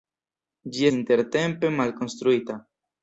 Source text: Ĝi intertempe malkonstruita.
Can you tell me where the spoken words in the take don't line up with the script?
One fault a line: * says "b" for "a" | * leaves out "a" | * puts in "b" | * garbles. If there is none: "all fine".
all fine